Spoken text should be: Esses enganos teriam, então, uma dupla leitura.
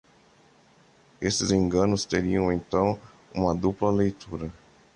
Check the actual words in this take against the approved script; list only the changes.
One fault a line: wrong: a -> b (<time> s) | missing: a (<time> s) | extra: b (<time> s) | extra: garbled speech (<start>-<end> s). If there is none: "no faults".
no faults